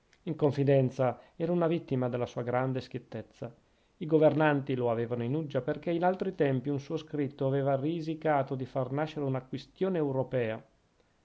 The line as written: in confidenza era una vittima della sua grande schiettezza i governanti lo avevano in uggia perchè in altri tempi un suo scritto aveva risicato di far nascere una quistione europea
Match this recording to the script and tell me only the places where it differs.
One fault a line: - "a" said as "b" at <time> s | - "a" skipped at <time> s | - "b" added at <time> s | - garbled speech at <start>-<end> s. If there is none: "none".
none